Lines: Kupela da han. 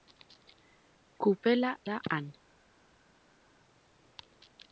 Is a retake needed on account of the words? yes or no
no